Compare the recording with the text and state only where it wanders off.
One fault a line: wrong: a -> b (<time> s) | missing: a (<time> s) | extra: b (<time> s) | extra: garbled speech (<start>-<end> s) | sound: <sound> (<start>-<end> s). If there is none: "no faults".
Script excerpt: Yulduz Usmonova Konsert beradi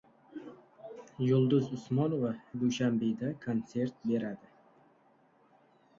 extra: Dushanbeda (2.6 s)